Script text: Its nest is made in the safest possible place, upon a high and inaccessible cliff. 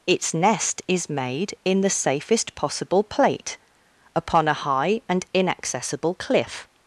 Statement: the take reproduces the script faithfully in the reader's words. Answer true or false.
false